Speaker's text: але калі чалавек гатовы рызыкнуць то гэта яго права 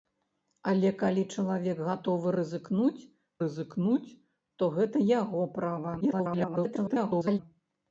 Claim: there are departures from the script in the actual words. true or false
true